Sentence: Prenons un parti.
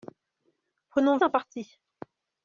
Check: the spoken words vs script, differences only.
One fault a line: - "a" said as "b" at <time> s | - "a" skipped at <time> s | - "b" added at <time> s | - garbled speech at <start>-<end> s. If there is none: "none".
none